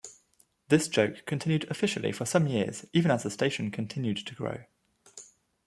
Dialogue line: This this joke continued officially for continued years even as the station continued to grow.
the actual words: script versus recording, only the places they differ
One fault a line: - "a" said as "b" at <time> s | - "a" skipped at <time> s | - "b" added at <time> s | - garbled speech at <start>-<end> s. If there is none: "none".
- "this" skipped at 0.9 s
- "continued" said as "some" at 2.2 s